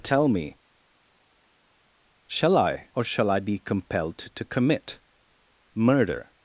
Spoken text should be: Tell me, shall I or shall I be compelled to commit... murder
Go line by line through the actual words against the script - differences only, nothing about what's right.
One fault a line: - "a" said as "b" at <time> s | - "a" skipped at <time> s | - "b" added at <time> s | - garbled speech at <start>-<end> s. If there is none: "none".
none